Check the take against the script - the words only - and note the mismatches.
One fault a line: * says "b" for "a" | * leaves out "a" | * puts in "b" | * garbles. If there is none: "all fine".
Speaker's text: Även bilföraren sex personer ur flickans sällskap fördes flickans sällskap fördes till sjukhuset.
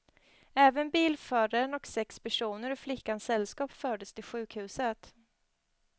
* puts in "och"
* leaves out "flickans sällskap fördes"